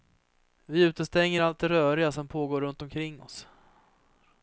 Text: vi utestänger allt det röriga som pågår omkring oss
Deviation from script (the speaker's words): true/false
true